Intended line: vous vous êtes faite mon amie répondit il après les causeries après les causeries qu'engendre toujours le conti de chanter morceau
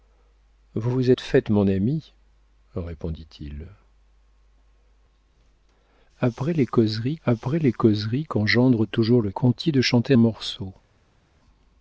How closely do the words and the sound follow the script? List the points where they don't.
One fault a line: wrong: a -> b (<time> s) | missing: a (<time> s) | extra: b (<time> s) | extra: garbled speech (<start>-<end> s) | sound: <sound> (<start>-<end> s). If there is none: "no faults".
no faults